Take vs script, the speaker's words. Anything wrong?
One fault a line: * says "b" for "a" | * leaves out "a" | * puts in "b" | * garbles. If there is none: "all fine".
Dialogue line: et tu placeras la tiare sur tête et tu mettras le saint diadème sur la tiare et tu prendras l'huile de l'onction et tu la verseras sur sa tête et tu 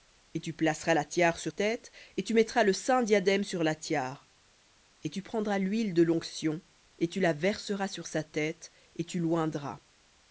all fine